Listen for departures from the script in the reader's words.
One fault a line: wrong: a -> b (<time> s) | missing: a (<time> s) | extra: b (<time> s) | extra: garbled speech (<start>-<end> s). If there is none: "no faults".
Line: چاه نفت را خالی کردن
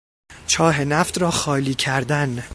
no faults